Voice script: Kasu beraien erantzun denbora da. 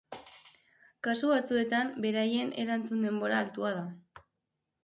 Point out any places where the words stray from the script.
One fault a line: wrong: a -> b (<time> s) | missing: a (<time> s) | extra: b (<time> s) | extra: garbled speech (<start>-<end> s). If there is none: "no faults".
extra: batzuetan (1.3 s)
extra: altua (3.5 s)